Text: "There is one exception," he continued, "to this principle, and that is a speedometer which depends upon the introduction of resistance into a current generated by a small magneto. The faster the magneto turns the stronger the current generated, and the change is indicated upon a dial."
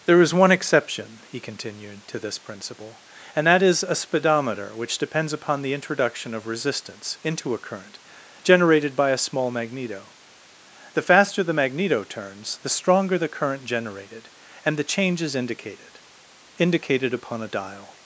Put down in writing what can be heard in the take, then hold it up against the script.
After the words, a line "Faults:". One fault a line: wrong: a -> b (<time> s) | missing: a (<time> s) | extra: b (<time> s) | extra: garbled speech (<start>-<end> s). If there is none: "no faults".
"There is one exception," he continued, "to this principle, and that is a speedometer which depends upon the introduction of resistance into a current generated by a small magneto. The faster the magneto turns the stronger the current generated, and the change is indicated indicated upon a dial."
Faults:
extra: indicated (16.6 s)